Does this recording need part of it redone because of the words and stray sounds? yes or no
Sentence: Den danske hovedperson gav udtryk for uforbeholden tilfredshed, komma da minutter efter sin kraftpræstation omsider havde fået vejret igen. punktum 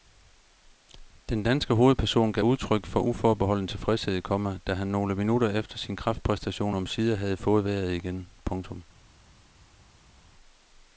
yes